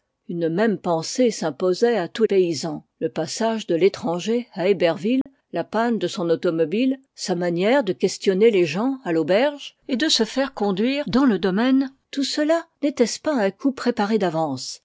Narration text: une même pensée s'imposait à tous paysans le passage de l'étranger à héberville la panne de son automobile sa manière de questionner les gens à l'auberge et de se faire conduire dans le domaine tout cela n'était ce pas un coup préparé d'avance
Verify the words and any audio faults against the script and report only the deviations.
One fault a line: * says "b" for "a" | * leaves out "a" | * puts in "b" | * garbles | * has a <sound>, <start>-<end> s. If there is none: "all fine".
* has a dropout, 5.2-5.3 s